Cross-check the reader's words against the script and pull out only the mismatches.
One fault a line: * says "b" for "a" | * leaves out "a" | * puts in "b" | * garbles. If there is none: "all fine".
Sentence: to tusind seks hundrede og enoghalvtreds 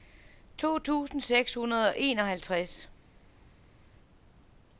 all fine